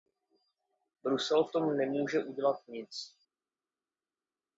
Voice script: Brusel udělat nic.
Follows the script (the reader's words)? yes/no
no